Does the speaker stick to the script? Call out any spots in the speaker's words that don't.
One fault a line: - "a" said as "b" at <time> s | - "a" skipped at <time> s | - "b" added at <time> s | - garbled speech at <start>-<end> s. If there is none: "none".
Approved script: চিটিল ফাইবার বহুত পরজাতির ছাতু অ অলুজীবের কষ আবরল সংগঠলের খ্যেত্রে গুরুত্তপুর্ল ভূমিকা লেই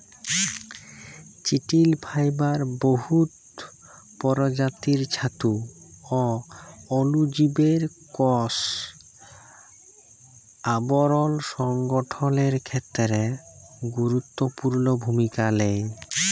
none